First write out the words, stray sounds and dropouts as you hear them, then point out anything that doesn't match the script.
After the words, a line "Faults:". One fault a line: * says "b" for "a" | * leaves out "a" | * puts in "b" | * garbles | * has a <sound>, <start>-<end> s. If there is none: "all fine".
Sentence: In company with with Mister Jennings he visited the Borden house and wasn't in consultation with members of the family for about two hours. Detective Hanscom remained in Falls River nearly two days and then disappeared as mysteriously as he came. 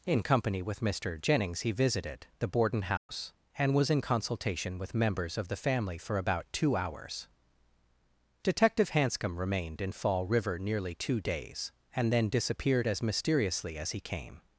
In company with Mister Jennings he visited the Borden house and was in consultation with members of the family for about two hours. Detective Hanscom remained in Fall River nearly two days and then disappeared as mysteriously as he came.
Faults:
* leaves out "with"
* has a dropout, 3.0-3.1 s
* says "was" for "wasn't"
* says "Fall" for "Falls"